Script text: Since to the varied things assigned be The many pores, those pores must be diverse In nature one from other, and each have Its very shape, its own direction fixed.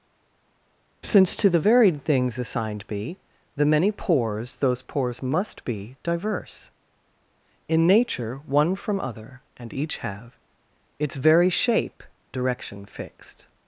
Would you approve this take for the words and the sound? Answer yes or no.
no